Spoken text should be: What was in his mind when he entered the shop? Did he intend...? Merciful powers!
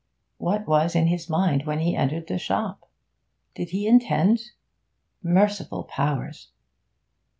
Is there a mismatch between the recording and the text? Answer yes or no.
no